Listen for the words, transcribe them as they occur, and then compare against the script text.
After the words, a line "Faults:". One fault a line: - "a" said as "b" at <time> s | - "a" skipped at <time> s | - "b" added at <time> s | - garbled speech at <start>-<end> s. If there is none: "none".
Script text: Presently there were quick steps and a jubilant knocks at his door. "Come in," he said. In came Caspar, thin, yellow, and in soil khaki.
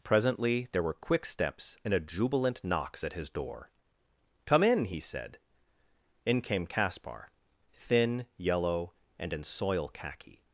Presently there were quick steps and a jubilant knocks at his door. "Come in," he said. In came Caspar, thin, yellow, and in soil khaki.
Faults:
none